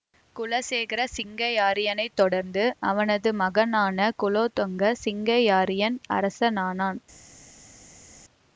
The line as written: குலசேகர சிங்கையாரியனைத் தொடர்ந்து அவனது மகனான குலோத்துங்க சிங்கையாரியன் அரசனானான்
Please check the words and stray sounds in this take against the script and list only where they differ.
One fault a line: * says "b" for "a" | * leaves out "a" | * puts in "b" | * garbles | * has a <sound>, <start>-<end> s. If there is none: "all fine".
all fine